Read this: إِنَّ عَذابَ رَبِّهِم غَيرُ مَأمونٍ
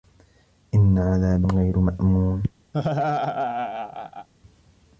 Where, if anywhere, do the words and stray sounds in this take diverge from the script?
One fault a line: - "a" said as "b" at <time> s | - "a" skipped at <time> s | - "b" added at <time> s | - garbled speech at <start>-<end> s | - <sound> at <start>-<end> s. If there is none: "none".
- "رَبِّهِم" skipped at 1.4 s
- laugh at 2.7-4.3 s